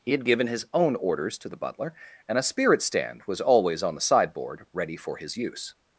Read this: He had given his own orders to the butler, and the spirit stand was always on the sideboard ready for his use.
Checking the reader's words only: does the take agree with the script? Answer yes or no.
no